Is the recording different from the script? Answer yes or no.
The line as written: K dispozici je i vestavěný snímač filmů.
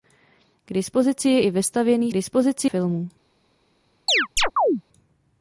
yes